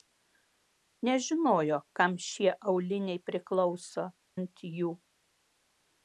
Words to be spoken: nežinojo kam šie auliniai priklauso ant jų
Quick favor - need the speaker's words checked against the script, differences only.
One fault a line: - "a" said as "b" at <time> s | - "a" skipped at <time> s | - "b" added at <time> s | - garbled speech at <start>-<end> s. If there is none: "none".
none